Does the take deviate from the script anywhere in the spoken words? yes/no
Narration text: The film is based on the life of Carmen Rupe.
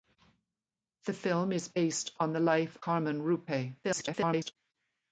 yes